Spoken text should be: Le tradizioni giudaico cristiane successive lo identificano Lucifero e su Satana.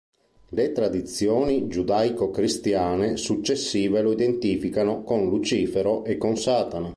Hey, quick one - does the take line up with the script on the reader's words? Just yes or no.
no